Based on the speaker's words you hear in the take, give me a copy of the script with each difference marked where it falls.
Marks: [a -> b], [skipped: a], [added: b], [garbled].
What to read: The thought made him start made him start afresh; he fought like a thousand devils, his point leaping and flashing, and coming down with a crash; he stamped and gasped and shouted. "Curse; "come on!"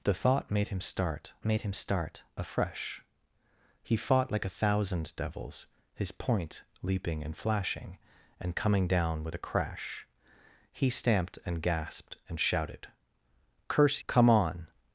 The thought made him start made him start afresh; he fought like a thousand devils, his point leaping and flashing, and coming down with a crash; he stamped and gasped and shouted. "Curse; "come on!"